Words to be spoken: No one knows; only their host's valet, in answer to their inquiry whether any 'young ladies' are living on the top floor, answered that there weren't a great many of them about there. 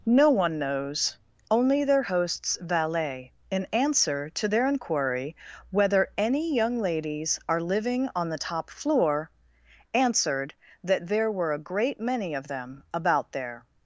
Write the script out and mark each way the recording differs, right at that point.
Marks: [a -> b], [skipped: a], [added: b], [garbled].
No one knows; only their host's valet, in answer to their inquiry whether any 'young ladies' are living on the top floor, answered that there [weren't -> were] a great many of them about there.